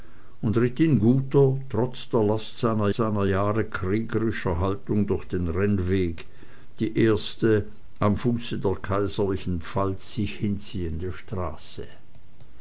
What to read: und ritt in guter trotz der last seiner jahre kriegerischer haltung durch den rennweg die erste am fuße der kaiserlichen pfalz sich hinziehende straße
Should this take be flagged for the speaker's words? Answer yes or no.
yes